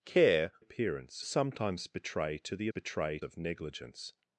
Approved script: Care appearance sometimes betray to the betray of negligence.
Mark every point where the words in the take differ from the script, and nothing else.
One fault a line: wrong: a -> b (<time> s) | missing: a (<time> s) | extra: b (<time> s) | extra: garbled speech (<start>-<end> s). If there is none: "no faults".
no faults